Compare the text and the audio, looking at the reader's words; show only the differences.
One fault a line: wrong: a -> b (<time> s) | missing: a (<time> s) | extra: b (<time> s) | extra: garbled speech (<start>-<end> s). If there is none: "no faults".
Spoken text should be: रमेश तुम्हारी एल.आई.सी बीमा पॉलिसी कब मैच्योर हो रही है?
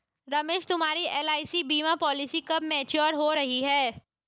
no faults